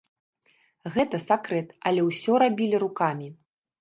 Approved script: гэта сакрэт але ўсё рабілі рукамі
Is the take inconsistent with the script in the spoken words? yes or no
no